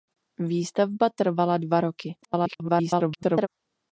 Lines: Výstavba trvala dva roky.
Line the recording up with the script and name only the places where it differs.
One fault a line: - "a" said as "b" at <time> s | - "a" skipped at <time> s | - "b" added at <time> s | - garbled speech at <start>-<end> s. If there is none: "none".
- garbled speech at 2.2-3.5 s